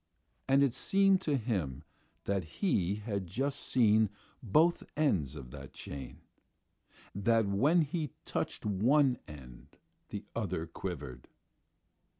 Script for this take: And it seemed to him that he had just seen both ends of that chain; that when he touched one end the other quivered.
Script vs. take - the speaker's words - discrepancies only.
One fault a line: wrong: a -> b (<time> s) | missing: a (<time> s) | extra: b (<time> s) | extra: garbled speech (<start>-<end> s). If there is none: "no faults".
no faults